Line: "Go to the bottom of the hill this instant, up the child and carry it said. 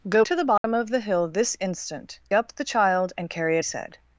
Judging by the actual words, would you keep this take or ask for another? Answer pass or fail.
pass